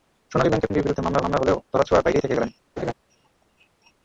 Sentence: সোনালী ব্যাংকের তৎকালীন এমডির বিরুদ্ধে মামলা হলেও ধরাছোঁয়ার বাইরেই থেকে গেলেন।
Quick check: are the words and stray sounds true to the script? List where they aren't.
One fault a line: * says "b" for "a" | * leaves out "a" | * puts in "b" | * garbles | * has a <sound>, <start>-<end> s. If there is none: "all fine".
* leaves out "তৎকালীন"
* puts in "মামলা"
* has a laugh, 2.8-2.9 s